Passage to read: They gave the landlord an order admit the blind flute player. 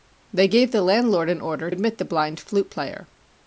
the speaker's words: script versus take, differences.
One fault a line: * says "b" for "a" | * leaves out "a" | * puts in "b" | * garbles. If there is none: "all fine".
all fine